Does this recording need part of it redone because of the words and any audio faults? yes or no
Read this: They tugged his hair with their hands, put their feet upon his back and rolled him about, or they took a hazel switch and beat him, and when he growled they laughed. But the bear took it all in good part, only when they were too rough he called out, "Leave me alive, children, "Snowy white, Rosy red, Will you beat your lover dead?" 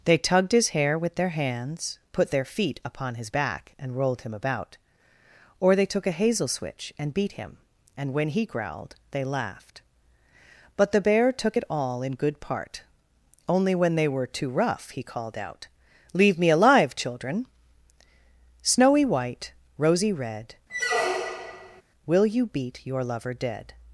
yes